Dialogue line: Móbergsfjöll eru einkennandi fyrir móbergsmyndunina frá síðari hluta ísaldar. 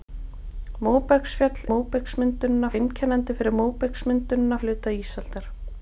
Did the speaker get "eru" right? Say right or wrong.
wrong